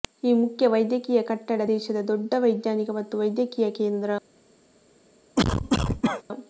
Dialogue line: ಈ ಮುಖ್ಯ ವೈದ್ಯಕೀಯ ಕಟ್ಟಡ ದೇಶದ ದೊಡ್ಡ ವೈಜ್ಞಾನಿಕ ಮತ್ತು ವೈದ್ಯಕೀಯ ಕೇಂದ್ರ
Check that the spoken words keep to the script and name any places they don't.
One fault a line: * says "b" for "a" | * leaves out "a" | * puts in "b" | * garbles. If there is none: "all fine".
all fine